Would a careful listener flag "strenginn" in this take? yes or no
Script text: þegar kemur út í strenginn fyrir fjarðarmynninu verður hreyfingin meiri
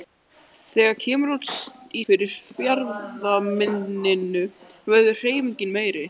yes